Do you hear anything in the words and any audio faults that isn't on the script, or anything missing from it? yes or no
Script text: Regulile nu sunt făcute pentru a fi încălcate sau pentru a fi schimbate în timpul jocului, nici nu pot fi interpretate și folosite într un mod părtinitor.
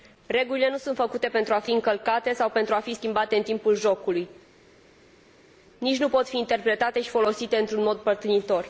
no